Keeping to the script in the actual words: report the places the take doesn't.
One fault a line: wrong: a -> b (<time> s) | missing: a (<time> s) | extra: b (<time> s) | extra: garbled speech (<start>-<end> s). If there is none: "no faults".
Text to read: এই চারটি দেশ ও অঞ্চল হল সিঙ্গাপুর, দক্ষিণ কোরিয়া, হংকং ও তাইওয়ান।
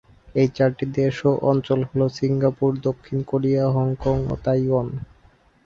no faults